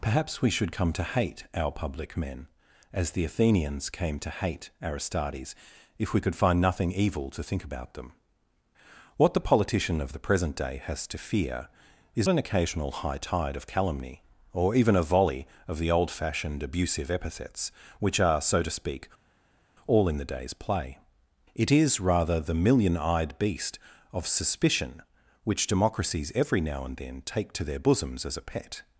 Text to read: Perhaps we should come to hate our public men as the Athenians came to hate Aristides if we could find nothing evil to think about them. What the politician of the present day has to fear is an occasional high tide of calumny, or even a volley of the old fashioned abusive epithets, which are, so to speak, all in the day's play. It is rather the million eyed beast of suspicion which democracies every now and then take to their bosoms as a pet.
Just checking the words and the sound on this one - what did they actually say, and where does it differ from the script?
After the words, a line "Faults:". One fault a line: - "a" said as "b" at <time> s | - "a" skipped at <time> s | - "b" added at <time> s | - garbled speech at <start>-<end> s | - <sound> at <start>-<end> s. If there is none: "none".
Perhaps we should come to hate our public men as the Athenians came to hate Aristides if we could find nothing evil to think about them. What the politician of the present day has to fear is an occasional high tide of calumny, or even a volley of the old fashioned abusive epithets, which are, so to speak, all in the day's play. It is rather the million eyed beast of suspicion which democracies every now and then take to their bosoms as a pet.
Faults:
none